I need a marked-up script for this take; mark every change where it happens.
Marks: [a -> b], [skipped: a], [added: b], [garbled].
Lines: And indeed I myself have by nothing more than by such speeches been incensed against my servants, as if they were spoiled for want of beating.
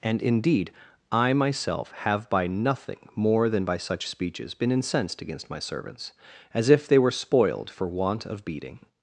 And indeed I myself have by nothing more than by such speeches been incensed against my servants, as if they were spoiled for want of beating.